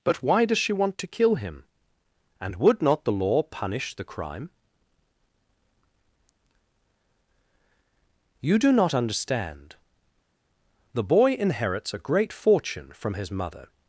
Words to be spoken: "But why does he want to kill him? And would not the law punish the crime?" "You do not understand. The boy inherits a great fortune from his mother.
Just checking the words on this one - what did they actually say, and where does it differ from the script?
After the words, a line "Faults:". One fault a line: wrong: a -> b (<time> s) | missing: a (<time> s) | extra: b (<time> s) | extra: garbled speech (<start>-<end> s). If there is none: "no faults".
"But why does she want to kill him? And would not the law punish the crime?" "You do not understand. The boy inherits a great fortune from his mother.
Faults:
wrong: he -> she (0.6 s)